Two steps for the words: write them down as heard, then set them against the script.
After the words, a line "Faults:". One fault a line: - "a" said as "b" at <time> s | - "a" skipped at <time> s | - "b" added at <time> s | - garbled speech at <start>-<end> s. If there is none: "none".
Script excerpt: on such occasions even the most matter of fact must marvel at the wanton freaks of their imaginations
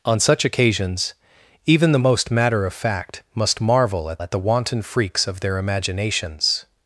on such occasions even the most matter of fact must marvel at at the wanton freaks of their imaginations
Faults:
- "at" added at 4.2 s